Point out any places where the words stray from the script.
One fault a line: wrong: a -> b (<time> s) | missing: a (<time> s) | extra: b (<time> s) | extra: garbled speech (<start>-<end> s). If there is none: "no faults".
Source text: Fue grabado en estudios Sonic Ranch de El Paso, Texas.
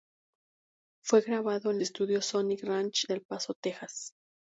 no faults